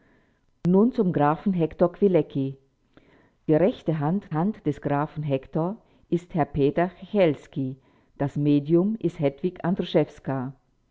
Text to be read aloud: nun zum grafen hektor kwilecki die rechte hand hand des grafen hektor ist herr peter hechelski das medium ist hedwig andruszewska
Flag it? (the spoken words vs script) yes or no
no